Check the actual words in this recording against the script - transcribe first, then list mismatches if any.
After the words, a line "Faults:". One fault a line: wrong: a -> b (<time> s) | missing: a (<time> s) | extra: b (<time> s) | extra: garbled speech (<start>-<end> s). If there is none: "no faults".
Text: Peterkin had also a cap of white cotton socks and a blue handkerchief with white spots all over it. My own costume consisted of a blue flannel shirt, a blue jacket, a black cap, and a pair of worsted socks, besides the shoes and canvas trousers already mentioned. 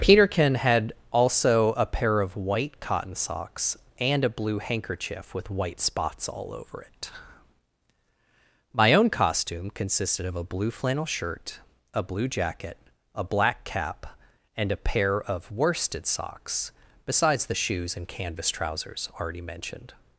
Peterkin had also a pair of white cotton socks and a blue handkerchief with white spots all over it. My own costume consisted of a blue flannel shirt, a blue jacket, a black cap, and a pair of worsted socks, besides the shoes and canvas trousers already mentioned.
Faults:
wrong: cap -> pair (1.9 s)